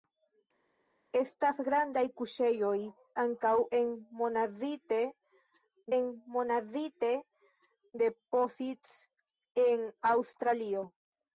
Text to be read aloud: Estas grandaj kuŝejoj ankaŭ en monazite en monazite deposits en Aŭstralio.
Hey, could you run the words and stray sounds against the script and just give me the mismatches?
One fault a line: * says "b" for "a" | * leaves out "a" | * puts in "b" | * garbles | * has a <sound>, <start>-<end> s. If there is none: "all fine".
all fine